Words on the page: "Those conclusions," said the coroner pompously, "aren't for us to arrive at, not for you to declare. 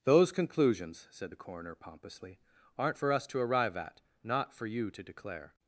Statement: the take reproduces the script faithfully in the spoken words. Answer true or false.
true